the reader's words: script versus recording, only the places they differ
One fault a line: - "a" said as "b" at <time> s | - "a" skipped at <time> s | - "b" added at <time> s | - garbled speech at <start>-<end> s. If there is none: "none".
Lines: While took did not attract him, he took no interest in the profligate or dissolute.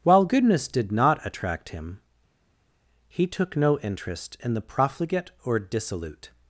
- "took" said as "goodness" at 0.2 s